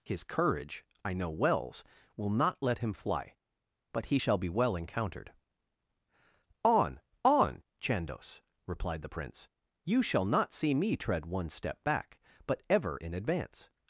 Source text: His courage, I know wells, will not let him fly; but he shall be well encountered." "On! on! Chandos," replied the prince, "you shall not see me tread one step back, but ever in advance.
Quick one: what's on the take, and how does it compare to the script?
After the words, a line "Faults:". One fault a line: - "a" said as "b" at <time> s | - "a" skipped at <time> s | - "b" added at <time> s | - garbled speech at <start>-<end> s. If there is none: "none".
His courage, I know wells, will not let him fly; but he shall be well encountered." "On! on! Chandos," replied the prince, "you shall not see me tread one step back, but ever in advance.
Faults:
none